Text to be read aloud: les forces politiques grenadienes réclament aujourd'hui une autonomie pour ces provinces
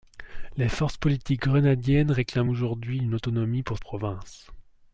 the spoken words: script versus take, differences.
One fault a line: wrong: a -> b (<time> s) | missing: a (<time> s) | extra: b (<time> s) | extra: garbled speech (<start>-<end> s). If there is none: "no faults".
missing: ces (3.8 s)